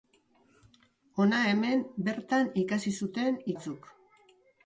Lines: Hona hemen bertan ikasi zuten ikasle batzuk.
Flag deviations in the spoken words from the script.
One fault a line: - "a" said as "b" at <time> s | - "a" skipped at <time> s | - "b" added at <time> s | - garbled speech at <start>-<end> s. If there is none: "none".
- "ikasle" skipped at 3.4 s